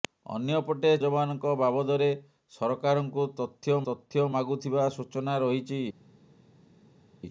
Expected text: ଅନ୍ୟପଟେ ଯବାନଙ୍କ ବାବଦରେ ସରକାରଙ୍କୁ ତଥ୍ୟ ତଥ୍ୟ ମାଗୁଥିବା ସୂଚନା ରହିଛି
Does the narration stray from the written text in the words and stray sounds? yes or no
no